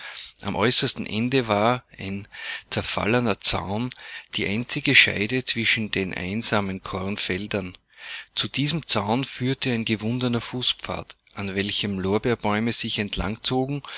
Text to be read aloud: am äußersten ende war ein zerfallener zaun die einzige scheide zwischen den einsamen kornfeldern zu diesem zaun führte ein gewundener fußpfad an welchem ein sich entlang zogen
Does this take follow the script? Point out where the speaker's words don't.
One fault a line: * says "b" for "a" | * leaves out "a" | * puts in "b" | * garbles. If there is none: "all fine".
* says "lorbeerbäume" for "ein"